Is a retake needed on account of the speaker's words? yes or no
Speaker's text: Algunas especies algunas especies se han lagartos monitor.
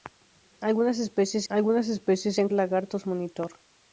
no